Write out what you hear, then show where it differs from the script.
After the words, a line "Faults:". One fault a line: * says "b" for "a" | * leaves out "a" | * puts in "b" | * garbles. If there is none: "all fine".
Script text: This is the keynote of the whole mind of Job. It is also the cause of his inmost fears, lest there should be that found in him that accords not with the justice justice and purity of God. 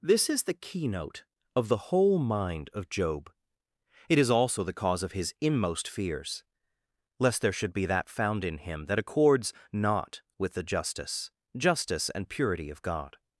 This is the keynote of the whole mind of Job. It is also the cause of his inmost fears, lest there should be that found in him that accords not with the justice justice and purity of God.
Faults:
all fine